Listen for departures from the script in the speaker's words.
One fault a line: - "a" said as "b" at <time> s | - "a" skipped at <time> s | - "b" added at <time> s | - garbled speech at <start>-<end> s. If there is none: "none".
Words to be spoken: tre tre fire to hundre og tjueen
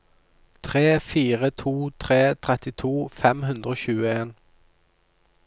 - "fire to" added at 1.0 s
- "fire to" said as "trettito fem" at 2.5 s